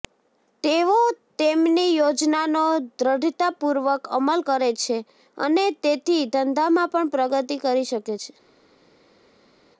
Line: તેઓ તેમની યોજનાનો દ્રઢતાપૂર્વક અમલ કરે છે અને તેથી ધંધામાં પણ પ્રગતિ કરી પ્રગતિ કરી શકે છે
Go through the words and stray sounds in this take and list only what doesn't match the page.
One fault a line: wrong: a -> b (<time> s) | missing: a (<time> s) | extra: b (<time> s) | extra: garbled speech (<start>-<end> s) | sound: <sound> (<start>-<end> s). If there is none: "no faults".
missing: પ્રગતિ કરી (7.9 s)